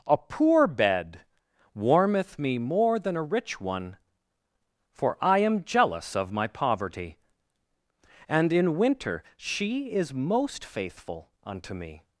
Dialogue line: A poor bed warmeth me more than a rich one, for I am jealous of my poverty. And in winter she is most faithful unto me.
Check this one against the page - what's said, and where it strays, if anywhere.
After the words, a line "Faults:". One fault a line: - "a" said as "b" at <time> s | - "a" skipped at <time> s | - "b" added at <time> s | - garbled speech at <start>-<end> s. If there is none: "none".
A poor bed warmeth me more than a rich one, for I am jealous of my poverty. And in winter she is most faithful unto me.
Faults:
none